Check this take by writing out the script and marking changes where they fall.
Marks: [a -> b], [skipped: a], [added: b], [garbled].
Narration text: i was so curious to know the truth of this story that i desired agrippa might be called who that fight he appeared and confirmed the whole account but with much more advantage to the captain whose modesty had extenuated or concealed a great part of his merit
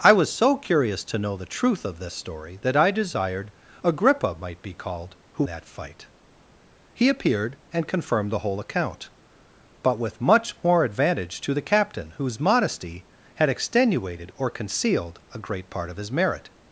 i was so curious to know the truth of this story that i desired agrippa might be called who that fight he appeared and confirmed the whole account but with much more advantage to the captain whose modesty had extenuated or concealed a great part of his merit